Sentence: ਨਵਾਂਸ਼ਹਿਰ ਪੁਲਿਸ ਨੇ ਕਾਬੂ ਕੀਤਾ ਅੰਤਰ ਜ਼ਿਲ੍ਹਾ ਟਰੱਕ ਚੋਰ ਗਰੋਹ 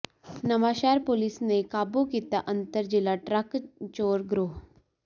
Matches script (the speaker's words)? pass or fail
pass